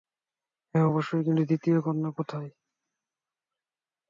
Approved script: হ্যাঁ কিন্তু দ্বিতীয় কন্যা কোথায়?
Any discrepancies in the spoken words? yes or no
yes